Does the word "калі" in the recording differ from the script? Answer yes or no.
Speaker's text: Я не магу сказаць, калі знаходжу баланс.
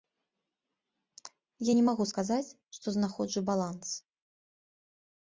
yes